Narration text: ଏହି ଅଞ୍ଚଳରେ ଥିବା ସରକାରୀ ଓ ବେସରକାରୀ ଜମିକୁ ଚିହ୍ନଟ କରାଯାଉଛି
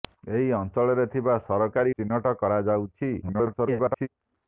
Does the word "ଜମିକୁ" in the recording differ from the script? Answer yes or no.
yes